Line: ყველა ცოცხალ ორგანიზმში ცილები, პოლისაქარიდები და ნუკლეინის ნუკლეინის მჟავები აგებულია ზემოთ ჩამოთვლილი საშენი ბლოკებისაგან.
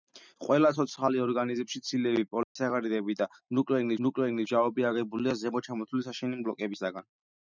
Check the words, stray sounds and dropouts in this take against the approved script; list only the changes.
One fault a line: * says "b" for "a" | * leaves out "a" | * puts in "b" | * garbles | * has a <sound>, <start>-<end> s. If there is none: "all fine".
* has a dropout, 2.4-2.6 s